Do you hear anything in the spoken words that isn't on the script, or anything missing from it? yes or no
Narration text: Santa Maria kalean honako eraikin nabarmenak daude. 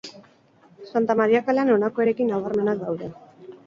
no